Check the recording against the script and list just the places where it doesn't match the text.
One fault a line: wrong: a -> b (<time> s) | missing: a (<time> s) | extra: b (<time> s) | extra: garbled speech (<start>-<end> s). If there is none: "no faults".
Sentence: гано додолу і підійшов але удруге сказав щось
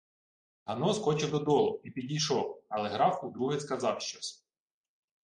extra: скочив (0.9 s)
extra: граф (2.9 s)